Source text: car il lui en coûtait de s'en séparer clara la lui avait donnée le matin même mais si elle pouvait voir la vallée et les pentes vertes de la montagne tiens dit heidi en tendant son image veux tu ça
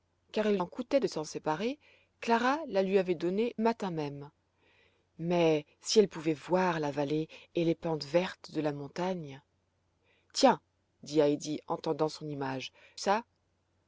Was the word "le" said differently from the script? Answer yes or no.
yes